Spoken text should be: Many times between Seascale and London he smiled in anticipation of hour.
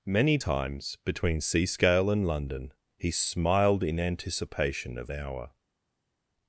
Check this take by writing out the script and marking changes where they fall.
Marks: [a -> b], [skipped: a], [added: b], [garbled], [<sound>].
Many times between Seascale and London he smiled in anticipation of hour.